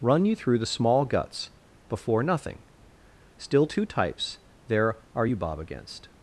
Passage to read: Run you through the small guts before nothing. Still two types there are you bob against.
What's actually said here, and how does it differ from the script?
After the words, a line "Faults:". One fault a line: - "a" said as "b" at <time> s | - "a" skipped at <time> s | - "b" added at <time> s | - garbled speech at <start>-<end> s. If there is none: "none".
Run you through the small guts before nothing. Still two types there are you bob against.
Faults:
none